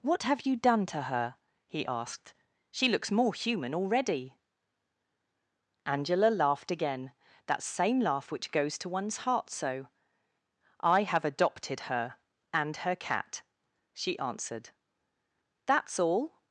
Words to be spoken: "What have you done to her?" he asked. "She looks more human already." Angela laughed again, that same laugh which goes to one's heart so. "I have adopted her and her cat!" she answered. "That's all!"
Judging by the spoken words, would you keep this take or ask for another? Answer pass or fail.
pass